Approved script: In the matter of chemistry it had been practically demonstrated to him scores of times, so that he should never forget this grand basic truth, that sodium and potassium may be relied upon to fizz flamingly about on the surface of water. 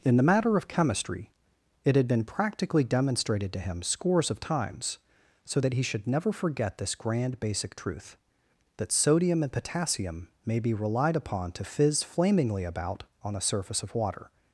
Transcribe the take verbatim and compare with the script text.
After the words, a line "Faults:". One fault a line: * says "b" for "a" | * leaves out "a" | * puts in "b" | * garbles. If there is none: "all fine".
In the matter of chemistry it had been practically demonstrated to him scores of times, so that he should never forget this grand basic truth, that sodium and potassium may be relied upon to fizz flamingly about on the surface of water.
Faults:
all fine